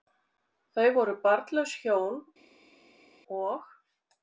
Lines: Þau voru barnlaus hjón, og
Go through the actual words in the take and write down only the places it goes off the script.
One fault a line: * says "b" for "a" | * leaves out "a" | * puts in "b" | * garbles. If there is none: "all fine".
all fine